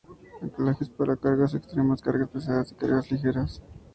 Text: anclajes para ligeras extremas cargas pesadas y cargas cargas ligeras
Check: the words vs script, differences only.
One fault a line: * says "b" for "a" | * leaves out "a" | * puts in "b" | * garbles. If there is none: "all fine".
* says "cargas" for "ligeras"
* leaves out "cargas"